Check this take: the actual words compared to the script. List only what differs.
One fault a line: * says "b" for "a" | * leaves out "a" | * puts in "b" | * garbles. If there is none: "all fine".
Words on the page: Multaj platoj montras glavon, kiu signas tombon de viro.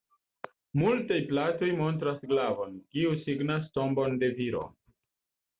all fine